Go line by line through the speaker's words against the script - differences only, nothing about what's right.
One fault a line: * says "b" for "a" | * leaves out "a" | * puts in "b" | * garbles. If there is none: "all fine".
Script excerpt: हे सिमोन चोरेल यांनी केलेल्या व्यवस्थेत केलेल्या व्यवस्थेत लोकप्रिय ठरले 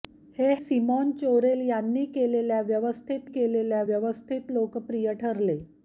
all fine